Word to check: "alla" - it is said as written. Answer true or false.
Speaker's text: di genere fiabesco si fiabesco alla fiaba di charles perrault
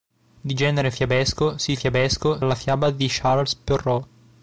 true